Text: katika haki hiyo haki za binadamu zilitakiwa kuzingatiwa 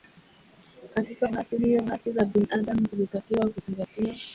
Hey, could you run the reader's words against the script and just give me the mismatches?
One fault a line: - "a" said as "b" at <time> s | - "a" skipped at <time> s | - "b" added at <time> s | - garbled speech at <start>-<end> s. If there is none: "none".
none